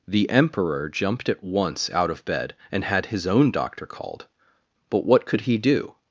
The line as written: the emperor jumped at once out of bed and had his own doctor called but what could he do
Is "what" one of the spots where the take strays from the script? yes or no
no